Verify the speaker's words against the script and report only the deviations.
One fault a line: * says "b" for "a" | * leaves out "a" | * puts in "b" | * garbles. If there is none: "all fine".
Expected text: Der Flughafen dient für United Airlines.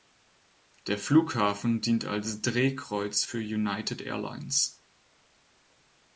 * puts in "als Drehkreuz"